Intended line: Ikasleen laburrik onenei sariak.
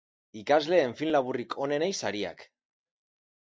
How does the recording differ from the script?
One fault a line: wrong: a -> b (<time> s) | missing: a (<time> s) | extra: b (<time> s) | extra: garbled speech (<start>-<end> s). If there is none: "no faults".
extra: film (1.0 s)